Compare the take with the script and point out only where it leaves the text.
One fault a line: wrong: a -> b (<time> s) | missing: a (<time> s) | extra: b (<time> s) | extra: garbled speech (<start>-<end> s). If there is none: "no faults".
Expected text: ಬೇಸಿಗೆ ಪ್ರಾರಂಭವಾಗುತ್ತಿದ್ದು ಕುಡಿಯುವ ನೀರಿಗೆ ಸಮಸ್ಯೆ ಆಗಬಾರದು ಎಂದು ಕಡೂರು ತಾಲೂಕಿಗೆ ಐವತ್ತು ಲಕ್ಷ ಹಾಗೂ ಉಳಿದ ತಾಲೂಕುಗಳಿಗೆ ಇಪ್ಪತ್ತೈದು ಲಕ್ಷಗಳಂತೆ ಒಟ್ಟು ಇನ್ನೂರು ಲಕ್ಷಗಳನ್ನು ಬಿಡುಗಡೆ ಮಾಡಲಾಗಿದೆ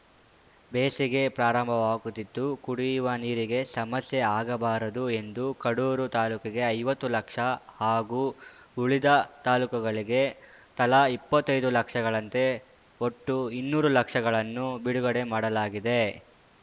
extra: ತಲಾ (10.8 s)